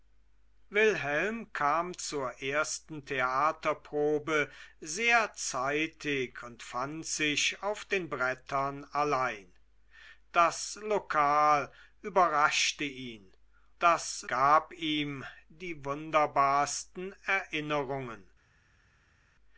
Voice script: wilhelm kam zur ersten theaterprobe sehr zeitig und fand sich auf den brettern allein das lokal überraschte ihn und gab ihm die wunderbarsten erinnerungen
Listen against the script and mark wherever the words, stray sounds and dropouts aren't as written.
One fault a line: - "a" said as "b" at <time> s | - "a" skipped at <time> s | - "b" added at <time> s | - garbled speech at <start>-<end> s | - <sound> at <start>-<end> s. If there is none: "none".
- "und" said as "das" at 13.8 s